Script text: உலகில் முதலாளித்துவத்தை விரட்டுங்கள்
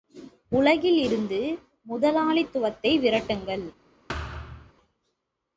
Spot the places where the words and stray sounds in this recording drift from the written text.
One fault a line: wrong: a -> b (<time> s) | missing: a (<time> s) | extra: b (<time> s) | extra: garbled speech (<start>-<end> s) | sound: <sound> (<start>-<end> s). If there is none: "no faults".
extra: இருந்து (1.0 s)
sound: thud (4.1-4.7 s)